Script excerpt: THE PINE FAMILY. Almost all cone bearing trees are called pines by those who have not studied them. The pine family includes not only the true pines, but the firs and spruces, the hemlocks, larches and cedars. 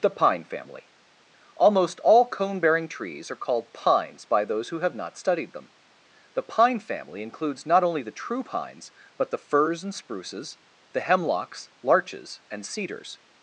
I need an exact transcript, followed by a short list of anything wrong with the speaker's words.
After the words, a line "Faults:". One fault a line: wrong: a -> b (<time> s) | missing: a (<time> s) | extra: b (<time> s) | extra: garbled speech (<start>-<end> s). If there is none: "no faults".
THE PINE FAMILY. Almost all cone bearing trees are called pines by those who have not studied them. The pine family includes not only the true pines, but the firs and spruces, the hemlocks, larches and cedars.
Faults:
no faults